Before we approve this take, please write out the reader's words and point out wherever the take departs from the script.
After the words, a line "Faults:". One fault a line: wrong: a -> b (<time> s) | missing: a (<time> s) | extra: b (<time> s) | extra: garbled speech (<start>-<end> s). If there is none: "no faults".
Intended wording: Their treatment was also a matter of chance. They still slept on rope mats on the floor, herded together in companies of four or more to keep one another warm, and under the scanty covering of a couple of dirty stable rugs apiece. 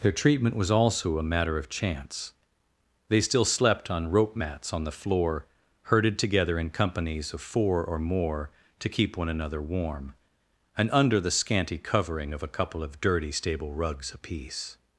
Their treatment was also a matter of chance. They still slept on rope mats on the floor, herded together in companies of four or more to keep one another warm, and under the scanty covering of a couple of dirty stable rugs apiece.
Faults:
no faults